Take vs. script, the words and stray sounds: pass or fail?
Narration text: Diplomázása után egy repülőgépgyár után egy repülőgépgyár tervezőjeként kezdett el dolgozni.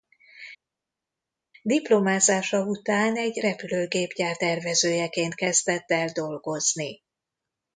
fail